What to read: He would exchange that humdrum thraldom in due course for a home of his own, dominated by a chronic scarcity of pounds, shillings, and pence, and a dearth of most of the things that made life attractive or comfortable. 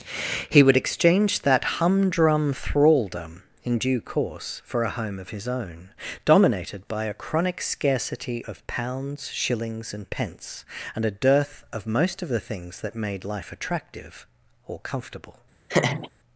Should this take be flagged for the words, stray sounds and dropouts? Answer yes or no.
yes